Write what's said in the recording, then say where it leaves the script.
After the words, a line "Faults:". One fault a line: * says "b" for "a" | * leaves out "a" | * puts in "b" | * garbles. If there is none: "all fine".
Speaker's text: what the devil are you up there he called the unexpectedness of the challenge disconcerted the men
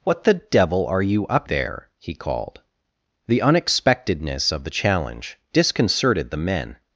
what the devil are you up there he called the unexpectedness of the challenge disconcerted the men
Faults:
all fine